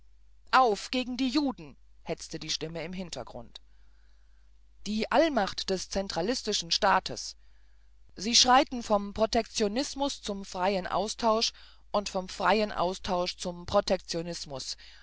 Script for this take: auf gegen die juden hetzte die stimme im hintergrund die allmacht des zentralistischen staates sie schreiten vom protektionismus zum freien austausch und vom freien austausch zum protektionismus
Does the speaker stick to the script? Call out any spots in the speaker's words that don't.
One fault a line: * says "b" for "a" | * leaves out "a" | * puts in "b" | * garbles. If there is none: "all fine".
all fine